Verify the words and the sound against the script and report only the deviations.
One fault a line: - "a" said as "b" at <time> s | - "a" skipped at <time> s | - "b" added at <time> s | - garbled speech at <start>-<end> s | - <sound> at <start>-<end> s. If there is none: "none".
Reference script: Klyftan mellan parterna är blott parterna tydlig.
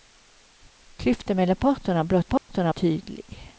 - dropout at 2.4-2.5 s